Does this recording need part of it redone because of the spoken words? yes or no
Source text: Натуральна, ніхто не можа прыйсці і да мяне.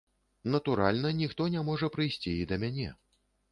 no